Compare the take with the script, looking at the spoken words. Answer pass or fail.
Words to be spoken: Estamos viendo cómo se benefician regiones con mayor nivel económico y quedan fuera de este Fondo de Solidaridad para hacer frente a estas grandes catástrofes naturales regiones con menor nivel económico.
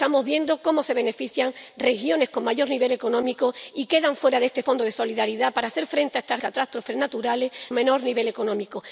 fail